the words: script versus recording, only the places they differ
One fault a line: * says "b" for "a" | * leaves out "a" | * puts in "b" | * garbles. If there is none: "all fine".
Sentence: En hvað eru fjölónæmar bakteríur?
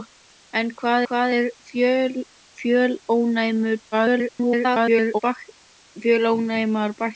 * puts in "hvað"
* garbles